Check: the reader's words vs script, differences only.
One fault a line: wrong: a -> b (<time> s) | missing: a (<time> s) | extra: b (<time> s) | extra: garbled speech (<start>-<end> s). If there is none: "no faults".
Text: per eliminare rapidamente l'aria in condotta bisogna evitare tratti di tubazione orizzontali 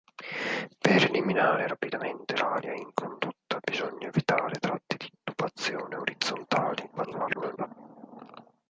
extra: garbled speech (7.0-7.7 s)